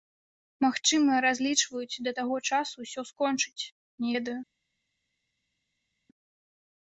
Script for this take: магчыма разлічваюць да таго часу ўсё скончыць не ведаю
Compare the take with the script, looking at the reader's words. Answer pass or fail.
pass